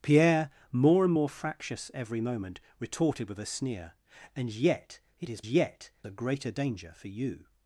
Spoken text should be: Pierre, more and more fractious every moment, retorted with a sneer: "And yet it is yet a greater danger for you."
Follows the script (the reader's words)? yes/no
yes